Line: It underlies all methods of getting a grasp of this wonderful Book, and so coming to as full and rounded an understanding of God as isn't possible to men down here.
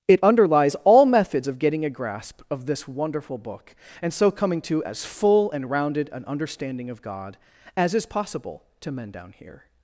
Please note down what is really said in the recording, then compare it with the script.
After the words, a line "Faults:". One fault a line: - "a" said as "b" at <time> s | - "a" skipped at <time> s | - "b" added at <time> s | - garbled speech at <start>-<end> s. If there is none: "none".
It underlies all methods of getting a grasp of this wonderful Book, and so coming to as full and rounded an understanding of God as is possible to men down here.
Faults:
- "isn't" said as "is" at 8.0 s